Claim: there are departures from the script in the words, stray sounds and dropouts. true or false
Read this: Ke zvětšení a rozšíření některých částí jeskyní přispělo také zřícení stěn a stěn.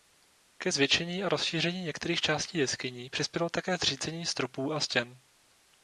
true